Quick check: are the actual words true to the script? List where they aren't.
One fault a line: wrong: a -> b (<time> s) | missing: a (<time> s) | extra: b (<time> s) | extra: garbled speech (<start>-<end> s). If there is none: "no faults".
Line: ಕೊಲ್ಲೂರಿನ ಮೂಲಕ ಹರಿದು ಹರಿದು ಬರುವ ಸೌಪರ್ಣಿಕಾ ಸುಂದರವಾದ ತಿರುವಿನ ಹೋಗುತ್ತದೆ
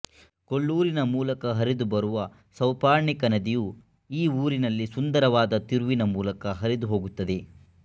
missing: ಹರಿದು (1.9 s)
extra: ನದಿಯು ಈ ಊರಿನಲ್ಲಿ (3.3 s)
extra: ಮೂಲಕ ಹರಿದು (6.2 s)